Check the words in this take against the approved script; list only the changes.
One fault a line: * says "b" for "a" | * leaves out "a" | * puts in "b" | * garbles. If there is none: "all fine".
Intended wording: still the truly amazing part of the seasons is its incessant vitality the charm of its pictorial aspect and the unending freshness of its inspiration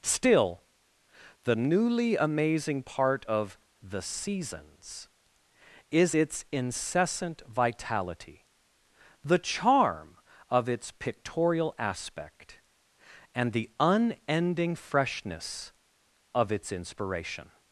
* says "newly" for "truly"